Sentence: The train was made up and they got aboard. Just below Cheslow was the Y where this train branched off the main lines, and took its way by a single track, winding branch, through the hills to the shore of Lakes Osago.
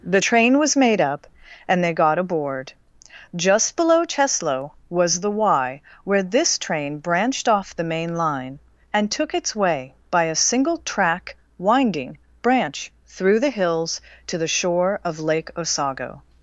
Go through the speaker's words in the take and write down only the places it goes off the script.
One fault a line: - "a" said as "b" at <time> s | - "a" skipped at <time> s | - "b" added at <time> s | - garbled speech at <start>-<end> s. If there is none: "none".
- "lines" said as "line" at 8.1 s
- "Lakes" said as "Lake" at 15.2 s